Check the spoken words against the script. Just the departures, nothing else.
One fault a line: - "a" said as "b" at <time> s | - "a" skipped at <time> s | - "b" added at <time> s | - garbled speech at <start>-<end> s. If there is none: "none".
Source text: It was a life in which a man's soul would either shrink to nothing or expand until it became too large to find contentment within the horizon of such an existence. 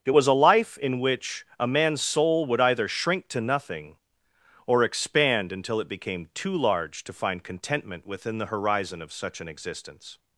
none